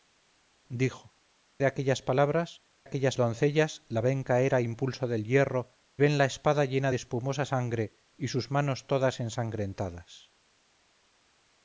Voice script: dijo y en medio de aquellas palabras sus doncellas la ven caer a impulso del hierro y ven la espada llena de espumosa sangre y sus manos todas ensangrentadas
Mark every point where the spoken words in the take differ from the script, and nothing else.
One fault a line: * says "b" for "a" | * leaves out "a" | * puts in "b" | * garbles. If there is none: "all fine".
* leaves out "y en medio"
* says "aquellas" for "sus"
* leaves out "y"